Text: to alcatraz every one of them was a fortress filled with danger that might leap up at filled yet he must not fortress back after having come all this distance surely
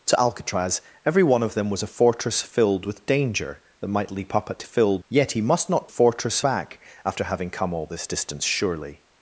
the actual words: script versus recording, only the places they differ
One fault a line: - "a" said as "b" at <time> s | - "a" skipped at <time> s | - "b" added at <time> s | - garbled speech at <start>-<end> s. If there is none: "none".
none